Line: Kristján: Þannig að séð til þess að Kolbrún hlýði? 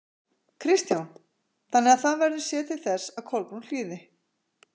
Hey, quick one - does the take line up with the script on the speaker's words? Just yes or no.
no